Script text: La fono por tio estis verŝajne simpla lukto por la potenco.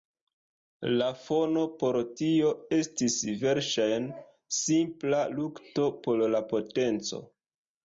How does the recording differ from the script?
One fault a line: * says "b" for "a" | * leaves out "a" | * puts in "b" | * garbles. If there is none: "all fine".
all fine